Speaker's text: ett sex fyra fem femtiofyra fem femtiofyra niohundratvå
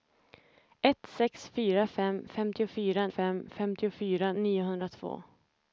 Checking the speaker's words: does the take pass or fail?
pass